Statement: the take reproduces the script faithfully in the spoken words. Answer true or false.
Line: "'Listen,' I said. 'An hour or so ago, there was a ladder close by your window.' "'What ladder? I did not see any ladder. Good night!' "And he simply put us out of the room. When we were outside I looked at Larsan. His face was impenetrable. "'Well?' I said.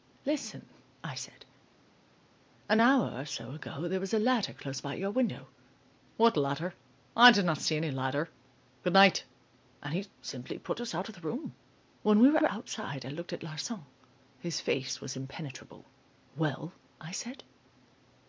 false